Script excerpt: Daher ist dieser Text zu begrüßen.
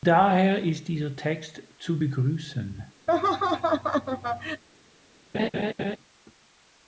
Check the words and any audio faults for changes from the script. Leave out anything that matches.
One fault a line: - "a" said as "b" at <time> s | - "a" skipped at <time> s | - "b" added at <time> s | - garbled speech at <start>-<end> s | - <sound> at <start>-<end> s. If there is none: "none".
- laugh at 3.1-4.6 s
- laugh at 5.3-6.0 s